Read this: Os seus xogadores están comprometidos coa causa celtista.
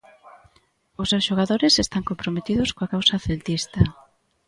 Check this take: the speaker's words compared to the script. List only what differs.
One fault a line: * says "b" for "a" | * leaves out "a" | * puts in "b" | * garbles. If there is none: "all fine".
all fine